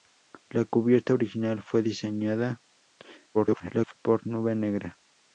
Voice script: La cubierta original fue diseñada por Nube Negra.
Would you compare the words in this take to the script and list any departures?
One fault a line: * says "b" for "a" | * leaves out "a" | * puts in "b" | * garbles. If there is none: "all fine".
* garbles